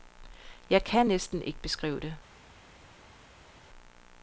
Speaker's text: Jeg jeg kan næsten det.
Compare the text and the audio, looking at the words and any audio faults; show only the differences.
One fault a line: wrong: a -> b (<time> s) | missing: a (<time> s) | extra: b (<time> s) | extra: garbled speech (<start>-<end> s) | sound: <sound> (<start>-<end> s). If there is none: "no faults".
missing: jeg (0.8 s)
extra: ikke beskrive (1.4 s)